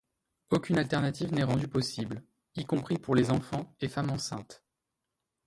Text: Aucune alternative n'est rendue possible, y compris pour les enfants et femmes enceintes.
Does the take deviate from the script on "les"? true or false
false